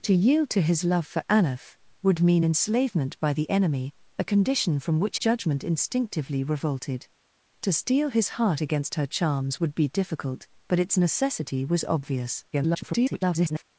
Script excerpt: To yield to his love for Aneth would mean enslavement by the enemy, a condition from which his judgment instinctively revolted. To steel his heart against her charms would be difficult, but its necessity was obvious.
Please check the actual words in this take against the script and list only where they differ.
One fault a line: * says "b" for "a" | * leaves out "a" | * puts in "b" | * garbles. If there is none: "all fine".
* leaves out "his"
* garbles